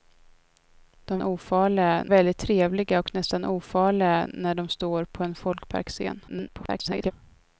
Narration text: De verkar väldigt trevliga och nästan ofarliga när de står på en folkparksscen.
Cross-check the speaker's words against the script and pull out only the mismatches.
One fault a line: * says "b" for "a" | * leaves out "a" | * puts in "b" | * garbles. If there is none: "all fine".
* says "ofarliga" for "verkar"
* garbles